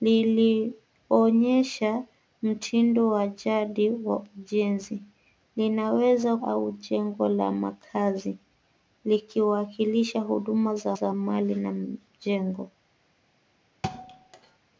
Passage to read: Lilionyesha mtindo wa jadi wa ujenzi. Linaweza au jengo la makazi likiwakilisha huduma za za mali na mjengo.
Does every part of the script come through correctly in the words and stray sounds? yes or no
no